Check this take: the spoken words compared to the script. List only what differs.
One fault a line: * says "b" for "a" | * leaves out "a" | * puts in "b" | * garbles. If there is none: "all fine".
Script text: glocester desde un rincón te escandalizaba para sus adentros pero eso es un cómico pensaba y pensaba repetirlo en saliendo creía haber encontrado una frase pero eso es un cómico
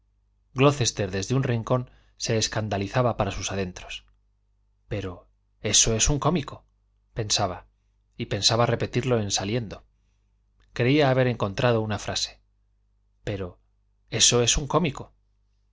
* says "se" for "te"